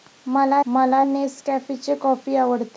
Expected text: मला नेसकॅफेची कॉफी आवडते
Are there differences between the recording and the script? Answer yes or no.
yes